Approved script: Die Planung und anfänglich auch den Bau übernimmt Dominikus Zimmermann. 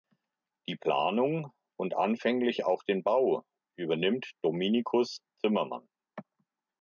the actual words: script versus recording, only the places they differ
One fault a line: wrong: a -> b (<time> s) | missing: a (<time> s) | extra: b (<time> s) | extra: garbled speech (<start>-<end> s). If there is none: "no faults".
no faults